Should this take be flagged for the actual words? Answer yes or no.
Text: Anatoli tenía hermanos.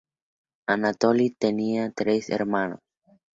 yes